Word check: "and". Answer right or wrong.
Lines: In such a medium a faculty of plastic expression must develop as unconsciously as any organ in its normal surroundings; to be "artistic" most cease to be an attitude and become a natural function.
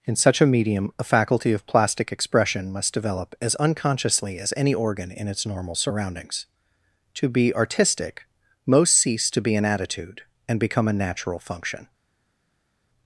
right